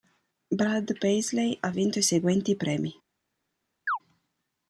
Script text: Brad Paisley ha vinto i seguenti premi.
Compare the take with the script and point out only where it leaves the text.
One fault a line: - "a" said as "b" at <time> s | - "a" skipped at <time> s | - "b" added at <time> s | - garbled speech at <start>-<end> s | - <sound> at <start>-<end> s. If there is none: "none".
- chirp at 3.9-4.0 s